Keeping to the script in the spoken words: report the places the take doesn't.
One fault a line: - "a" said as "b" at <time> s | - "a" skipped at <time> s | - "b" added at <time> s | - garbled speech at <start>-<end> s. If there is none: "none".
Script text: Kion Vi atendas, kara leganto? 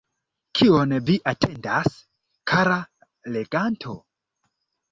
none